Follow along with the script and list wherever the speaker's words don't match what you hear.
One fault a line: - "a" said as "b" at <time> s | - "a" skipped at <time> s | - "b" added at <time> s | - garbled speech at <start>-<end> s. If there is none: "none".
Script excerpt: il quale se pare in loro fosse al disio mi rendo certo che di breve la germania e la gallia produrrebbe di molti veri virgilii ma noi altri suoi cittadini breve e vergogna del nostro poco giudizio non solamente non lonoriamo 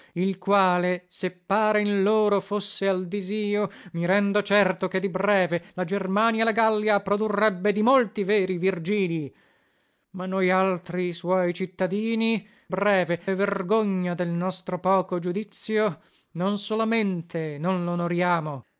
none